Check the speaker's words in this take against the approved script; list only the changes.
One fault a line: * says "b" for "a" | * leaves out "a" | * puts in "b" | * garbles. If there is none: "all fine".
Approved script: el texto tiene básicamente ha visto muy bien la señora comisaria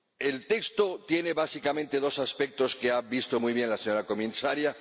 * puts in "dos aspectos que"